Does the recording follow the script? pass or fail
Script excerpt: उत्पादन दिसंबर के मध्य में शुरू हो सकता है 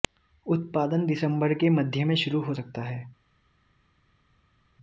pass